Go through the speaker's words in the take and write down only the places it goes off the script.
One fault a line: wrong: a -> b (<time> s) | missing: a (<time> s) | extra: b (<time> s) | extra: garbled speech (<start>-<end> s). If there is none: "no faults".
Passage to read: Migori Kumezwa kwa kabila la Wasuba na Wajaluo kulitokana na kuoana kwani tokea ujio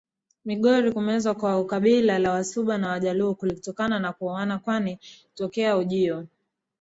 no faults